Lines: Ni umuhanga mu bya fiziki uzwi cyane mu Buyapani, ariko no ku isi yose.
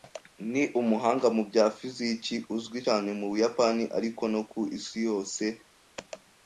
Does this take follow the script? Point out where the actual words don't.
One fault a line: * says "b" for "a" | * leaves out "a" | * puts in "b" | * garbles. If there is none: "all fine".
all fine